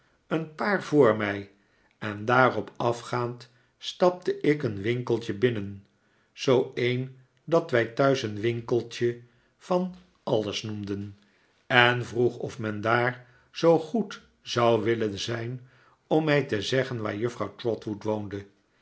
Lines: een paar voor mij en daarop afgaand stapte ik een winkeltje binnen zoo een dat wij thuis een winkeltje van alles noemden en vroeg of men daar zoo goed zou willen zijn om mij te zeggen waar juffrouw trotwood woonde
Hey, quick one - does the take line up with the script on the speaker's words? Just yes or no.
yes